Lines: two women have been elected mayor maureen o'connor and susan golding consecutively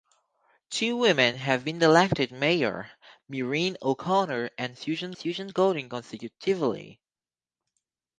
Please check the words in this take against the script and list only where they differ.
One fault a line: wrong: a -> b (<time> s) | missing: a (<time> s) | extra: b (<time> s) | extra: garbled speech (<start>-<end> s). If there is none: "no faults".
extra: susan (5.2 s)